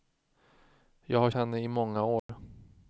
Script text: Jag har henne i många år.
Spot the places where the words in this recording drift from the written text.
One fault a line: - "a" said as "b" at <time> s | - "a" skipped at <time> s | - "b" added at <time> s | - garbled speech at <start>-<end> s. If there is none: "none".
none